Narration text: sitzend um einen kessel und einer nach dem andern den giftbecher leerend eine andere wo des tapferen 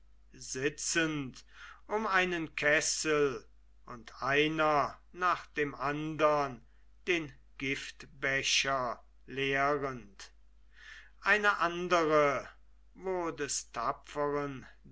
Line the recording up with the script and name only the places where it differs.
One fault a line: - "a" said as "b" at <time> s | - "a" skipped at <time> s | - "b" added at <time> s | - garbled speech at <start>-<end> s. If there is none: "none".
none